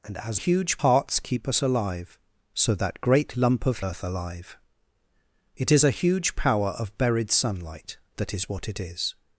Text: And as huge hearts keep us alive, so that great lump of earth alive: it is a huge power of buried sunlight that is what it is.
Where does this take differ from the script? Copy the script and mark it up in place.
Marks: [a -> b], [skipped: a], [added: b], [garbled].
And as huge hearts keep us alive, so that great lump of earth alive: it is a huge power of buried sunlight that is what it is.